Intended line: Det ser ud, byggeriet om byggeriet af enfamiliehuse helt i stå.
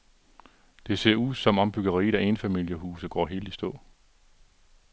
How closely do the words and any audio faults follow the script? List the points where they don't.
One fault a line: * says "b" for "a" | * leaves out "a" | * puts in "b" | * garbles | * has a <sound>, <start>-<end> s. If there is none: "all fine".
* says "som" for "byggeriet"
* puts in "går"